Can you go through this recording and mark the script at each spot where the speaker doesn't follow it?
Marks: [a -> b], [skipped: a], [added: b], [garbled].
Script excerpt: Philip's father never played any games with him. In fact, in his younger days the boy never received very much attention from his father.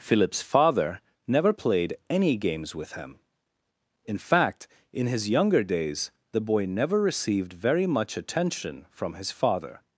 Philip's father never played any games with him. In fact, in his younger days the boy never received very much attention from his father.